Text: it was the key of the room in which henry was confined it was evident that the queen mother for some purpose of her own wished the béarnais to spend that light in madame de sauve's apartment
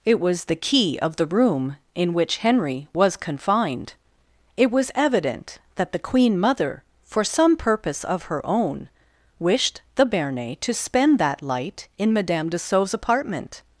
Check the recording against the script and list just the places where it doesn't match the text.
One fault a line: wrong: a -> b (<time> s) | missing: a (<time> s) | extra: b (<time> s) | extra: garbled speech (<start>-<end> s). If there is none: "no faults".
no faults